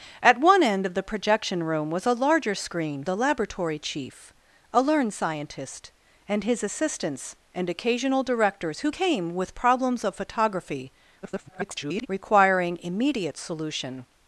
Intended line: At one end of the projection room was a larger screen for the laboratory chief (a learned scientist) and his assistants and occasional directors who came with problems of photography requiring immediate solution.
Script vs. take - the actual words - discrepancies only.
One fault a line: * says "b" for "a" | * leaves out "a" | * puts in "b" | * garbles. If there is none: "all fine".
* leaves out "for"
* garbles